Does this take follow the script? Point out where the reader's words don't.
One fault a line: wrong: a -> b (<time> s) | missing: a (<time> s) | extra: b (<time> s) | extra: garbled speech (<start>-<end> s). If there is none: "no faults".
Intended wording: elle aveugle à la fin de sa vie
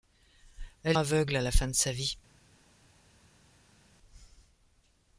no faults